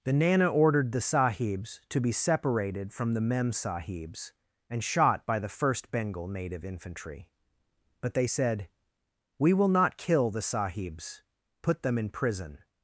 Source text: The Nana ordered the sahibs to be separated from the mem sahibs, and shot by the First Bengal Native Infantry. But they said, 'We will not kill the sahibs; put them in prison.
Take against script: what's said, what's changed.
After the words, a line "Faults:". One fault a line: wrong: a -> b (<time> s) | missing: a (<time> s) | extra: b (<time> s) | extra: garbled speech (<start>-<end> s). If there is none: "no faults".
The Nana ordered the sahibs to be separated from the mem sahibs, and shot by the First Bengal Native Infantry. But they said, 'We will not kill the sahibs; put them in prison.
Faults:
no faults